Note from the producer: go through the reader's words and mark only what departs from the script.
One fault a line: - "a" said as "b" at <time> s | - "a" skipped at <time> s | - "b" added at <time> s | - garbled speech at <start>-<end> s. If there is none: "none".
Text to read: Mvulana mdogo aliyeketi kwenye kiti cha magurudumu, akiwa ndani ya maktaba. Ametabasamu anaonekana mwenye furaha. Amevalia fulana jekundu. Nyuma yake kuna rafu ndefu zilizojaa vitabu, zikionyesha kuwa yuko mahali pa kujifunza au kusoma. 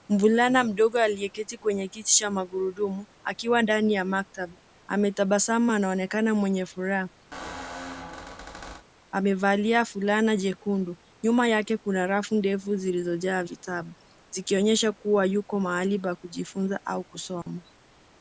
none